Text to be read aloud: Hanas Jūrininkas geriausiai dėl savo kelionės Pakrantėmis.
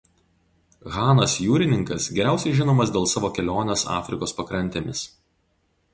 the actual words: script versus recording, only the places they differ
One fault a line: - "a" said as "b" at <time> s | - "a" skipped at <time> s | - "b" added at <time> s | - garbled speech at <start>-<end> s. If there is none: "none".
- "žinomas" added at 2.6 s
- "Afrikos" added at 4.0 s